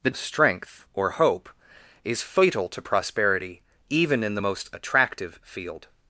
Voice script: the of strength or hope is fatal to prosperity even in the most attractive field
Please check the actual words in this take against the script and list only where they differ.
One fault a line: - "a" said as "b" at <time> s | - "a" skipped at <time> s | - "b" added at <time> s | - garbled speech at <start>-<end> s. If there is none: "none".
none